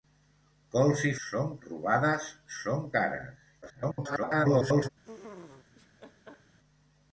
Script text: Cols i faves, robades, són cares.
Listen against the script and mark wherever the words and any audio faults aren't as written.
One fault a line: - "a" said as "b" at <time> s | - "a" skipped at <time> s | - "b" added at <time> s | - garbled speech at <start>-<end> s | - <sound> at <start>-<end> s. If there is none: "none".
- "faves" said as "són" at 1.3 s
- garbled speech at 3.6-4.9 s
- laugh at 5.0-6.6 s